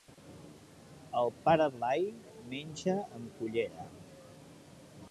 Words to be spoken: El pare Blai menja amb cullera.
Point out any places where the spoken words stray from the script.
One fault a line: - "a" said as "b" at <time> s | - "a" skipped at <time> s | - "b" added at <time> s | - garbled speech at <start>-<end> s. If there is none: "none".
none